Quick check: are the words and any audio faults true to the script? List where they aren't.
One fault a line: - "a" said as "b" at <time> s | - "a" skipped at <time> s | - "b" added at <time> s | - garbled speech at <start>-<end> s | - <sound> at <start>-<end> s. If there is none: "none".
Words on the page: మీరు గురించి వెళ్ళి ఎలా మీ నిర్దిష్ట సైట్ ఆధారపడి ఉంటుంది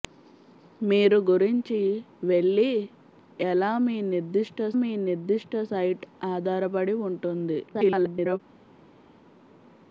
- "మీ నిర్దిష్ట" added at 4.7 s
- garbled speech at 7.7-8.4 s